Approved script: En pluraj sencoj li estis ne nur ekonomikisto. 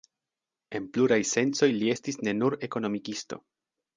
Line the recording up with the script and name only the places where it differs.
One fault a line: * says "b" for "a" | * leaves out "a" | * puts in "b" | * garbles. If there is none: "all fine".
all fine